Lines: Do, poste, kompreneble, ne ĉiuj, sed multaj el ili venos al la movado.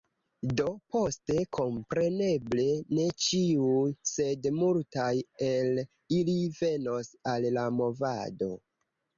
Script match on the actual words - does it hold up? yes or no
yes